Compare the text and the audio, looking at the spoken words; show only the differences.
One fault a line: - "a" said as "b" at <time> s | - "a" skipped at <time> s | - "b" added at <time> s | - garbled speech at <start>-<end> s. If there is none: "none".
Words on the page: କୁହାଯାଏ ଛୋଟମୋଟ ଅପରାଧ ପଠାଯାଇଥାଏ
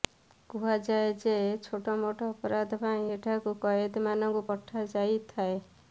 - "ଯେ" added at 1.2 s
- "ପାଇଁ ଏଠାକୁ କଏଦୀମାନଙ୍କୁ" added at 2.8 s